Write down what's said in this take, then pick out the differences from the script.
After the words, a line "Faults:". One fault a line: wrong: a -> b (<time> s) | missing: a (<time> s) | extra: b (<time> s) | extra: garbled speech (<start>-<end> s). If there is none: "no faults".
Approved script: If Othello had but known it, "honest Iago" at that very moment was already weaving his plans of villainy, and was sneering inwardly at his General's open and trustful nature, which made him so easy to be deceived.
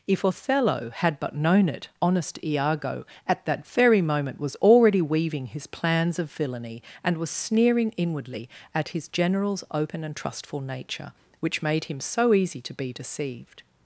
If Othello had but known it, "honest Iago" at that very moment was already weaving his plans of villainy, and was sneering inwardly at his General's open and trustful nature, which made him so easy to be deceived.
Faults:
no faults